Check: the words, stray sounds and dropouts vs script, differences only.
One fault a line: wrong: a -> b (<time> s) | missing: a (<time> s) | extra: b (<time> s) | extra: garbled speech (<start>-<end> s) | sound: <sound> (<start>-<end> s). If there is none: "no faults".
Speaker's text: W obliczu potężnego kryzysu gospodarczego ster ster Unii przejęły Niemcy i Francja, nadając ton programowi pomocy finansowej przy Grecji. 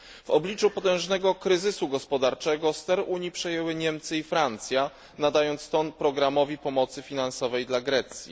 missing: ster (3.0 s)
wrong: przy -> dla (7.7 s)